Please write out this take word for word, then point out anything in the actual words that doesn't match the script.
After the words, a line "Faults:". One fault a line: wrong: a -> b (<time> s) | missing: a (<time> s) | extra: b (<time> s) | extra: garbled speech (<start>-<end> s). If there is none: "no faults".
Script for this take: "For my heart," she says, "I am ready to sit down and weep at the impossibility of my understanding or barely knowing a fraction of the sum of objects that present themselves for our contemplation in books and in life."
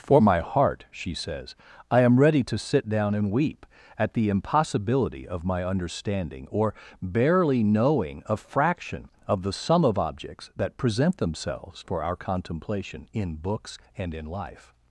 "For my heart," she says, "I am ready to sit down and weep at the impossibility of my understanding or barely knowing a fraction of the sum of objects that present themselves for our contemplation in books and in life."
Faults:
no faults